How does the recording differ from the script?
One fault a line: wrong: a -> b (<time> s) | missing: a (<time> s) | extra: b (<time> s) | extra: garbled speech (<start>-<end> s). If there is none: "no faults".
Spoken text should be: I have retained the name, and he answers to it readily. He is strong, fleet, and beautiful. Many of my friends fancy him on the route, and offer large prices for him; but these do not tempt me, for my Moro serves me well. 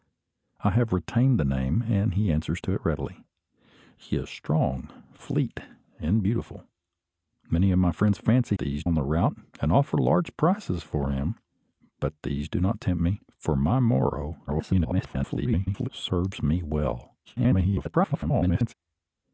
wrong: him -> these (8.6 s)
extra: garbled speech (14.5-15.9 s)
extra: garbled speech (17.2-18.7 s)